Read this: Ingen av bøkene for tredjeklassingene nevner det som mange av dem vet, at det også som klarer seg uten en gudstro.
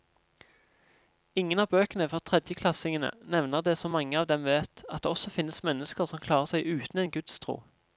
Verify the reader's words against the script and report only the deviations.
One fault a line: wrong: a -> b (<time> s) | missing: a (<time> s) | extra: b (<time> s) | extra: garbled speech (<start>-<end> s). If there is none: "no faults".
extra: finnes mennesker (5.4 s)